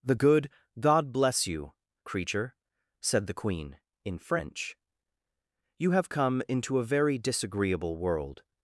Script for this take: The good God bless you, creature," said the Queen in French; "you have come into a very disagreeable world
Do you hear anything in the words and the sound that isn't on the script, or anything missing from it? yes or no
no